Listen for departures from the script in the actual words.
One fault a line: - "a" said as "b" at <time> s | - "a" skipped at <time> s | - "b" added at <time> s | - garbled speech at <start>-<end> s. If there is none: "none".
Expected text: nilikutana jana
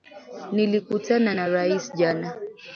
- "na rais" added at 1.3 s